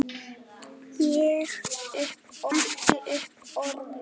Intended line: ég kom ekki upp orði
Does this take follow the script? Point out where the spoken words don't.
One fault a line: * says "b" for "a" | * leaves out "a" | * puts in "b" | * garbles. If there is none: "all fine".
* says "upp" for "kom"